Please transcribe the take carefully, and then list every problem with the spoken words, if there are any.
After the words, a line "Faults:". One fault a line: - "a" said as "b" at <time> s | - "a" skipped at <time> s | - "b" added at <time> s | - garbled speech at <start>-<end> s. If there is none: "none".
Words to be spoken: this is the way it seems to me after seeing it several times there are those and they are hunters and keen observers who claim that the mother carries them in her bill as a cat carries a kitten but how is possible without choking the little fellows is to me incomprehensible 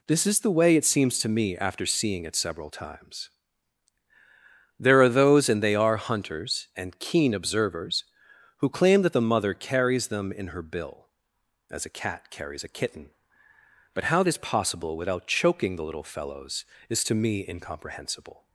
this is the way it seems to me after seeing it several times there are those and they are hunters and keen observers who claim that the mother carries them in her bill as a cat carries a kitten but how is possible without choking the little fellows is to me incomprehensible
Faults:
none